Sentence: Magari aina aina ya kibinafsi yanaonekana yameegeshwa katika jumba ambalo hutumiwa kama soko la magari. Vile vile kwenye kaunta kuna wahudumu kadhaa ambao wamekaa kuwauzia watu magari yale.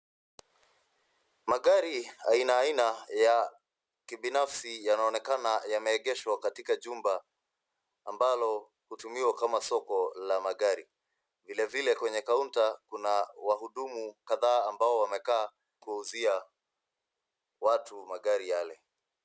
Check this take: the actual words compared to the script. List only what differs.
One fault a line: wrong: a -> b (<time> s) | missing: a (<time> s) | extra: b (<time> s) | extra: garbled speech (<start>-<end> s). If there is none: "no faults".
no faults